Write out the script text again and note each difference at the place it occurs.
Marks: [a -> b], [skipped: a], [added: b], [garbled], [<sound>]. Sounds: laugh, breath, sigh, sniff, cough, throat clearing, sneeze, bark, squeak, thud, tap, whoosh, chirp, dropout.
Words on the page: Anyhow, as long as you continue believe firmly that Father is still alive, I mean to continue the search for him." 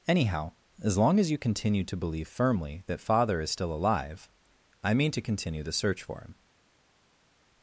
Anyhow, as long as you continue [added: to] believe firmly that Father is still alive, I mean to continue the search for him."